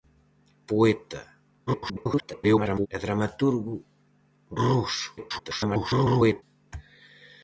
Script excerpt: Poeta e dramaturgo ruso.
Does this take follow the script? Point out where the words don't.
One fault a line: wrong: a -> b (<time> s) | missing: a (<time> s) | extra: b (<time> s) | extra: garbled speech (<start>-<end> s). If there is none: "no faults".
extra: garbled speech (1.7-2.9 s)
extra: garbled speech (5.2-6.4 s)